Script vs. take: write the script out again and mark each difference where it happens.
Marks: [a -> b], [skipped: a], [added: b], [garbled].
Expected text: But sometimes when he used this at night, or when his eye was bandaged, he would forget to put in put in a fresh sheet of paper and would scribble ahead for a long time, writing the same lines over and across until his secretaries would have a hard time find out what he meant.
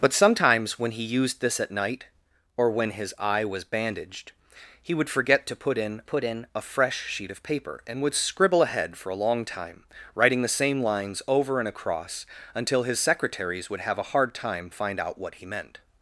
But sometimes when he used this at night, or when his eye was bandaged, he would forget to put in put in a fresh sheet of paper and would scribble ahead for a long time, writing the same lines over and across until his secretaries would have a hard time find out what he meant.